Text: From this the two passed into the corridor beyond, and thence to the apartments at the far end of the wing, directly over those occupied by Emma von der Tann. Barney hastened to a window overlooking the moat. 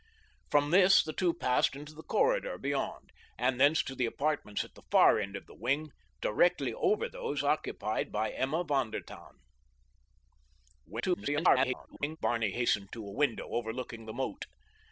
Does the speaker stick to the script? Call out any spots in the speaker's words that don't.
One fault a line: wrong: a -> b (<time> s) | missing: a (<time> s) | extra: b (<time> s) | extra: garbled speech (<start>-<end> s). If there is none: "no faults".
extra: garbled speech (10.9-12.2 s)